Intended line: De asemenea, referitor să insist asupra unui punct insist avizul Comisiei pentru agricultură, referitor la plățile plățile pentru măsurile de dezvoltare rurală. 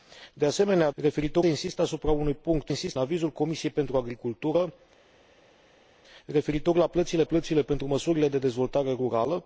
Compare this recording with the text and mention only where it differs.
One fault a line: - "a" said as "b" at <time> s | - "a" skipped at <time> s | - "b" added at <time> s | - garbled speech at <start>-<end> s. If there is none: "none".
none